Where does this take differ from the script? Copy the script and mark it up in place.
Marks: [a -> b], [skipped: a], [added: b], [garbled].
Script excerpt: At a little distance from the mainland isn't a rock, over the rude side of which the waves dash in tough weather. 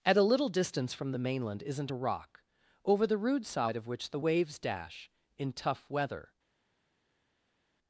At a little distance from the mainland isn't a rock, over the rude side of which the waves dash in tough weather.